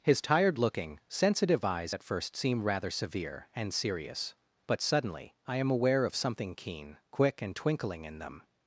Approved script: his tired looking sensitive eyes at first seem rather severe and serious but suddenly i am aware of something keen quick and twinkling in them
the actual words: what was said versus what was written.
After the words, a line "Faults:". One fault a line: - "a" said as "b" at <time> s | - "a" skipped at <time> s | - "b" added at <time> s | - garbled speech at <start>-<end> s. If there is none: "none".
his tired looking sensitive eyes at first seem rather severe and serious but suddenly i am aware of something keen quick and twinkling in them
Faults:
none